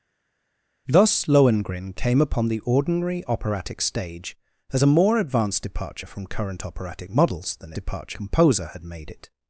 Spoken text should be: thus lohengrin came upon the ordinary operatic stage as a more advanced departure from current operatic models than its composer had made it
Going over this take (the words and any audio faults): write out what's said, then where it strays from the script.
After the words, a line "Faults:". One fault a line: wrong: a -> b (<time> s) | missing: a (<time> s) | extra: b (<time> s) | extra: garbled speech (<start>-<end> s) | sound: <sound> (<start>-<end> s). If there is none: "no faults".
thus lohengrin came upon the ordinary operatic stage as a more advanced departure from current operatic models than departure composer had made it
Faults:
wrong: its -> departure (7.8 s)